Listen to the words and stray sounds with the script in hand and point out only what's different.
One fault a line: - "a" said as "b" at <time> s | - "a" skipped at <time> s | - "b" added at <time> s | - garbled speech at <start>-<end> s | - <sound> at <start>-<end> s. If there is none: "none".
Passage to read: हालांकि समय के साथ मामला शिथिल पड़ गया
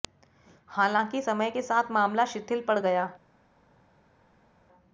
none